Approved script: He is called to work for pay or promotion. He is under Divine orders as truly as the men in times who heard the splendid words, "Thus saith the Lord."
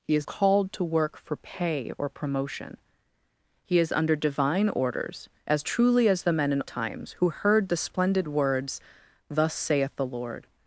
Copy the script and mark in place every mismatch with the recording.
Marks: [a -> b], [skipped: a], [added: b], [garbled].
He is called to work for pay or promotion. He is under Divine orders as truly as the men in times who heard the splendid words, "Thus saith the Lord."